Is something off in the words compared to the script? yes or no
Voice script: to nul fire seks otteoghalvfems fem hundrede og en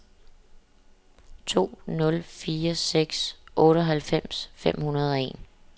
no